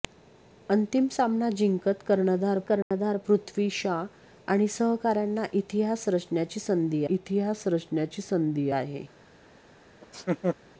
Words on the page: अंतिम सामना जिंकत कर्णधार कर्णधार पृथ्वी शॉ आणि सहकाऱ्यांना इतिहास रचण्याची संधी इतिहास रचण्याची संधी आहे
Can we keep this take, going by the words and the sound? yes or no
no